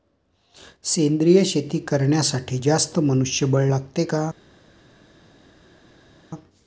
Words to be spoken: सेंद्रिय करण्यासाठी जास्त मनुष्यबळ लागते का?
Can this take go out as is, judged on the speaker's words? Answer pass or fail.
fail